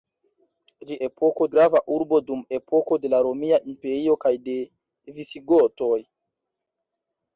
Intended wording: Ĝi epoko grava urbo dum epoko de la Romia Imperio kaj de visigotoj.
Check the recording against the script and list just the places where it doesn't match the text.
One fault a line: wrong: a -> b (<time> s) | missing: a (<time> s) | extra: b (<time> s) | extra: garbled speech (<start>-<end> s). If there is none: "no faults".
no faults